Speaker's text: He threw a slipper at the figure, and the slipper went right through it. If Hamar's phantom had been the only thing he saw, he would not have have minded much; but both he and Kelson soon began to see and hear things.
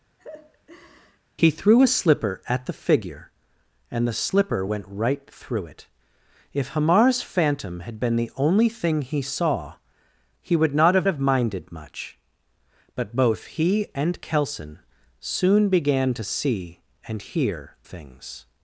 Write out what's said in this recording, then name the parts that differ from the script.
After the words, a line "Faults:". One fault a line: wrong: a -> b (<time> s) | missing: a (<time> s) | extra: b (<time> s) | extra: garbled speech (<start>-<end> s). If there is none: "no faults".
He threw a slipper at the figure, and the slipper went right through it. If Hamar's phantom had been the only thing he saw, he would not have have minded much; but both he and Kelson soon began to see and hear things.
Faults:
no faults